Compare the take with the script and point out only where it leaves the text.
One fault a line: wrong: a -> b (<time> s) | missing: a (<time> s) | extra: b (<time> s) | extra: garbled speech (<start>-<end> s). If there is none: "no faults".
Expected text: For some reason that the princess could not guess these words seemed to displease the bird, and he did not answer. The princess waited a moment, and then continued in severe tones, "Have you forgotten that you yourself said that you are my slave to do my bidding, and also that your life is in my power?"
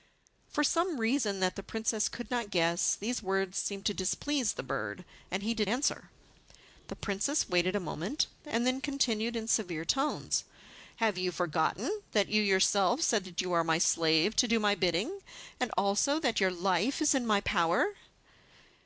missing: not (5.7 s)